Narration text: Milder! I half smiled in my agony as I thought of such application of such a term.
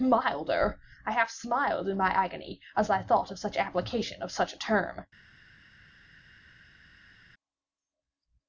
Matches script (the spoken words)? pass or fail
pass